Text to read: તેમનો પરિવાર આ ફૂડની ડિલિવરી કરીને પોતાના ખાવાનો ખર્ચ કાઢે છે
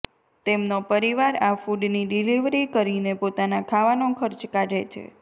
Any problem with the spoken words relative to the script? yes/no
no